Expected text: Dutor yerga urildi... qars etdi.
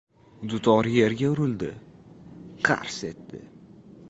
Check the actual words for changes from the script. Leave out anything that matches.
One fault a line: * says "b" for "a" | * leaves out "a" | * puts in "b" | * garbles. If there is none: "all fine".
all fine